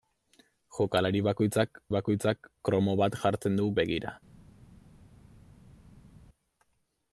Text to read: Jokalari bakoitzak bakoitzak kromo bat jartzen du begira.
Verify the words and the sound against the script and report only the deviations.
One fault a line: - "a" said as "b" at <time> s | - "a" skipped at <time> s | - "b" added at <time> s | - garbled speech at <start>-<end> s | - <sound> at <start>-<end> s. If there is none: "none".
none